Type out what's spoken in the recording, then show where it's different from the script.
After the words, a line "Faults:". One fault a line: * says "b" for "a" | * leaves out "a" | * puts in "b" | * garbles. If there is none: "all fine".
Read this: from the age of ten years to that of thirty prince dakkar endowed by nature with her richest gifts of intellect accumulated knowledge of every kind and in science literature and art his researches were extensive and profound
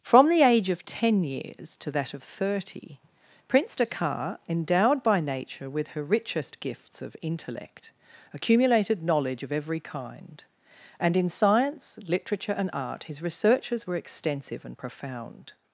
from the age of ten years to that of thirty prince dakkar endowed by nature with her richest gifts of intellect accumulated knowledge of every kind and in science literature and art his researches were extensive and profound
Faults:
all fine